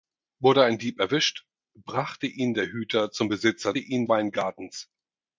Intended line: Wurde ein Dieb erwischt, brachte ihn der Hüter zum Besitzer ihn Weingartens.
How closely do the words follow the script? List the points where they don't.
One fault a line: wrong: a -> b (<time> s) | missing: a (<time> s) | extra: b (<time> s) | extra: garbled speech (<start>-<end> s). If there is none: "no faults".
no faults